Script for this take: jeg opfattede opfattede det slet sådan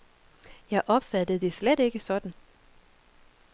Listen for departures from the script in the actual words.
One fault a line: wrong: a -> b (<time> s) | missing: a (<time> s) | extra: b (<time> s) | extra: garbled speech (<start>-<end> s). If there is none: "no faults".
missing: opfattede (1.4 s)
extra: ikke (1.8 s)